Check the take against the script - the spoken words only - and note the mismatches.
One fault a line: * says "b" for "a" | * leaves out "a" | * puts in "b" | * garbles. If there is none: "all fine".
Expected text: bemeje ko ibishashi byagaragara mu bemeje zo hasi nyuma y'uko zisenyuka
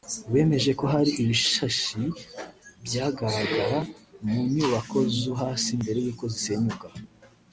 * puts in "hari"
* says "nyubako" for "bemeje"
* says "mbere" for "nyuma"